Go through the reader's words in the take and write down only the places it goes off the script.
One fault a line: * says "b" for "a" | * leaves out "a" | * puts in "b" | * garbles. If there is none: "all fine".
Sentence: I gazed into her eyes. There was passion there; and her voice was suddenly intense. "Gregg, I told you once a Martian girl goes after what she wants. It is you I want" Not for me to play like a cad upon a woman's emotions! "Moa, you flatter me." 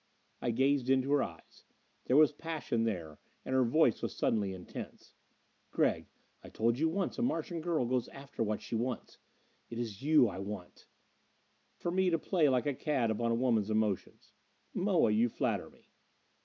* leaves out "Not"